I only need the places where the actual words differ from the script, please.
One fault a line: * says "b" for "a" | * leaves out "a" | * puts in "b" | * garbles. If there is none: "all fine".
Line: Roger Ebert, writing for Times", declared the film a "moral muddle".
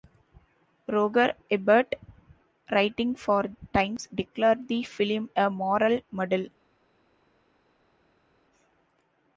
all fine